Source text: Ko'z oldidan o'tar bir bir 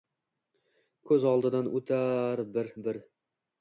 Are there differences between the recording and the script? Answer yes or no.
no